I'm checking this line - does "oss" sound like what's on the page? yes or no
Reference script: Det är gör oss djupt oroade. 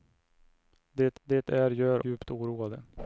no